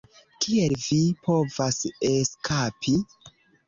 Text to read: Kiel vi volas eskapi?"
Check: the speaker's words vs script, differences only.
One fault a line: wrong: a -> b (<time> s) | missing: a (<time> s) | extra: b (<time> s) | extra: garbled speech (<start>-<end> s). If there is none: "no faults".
wrong: volas -> povas (1.3 s)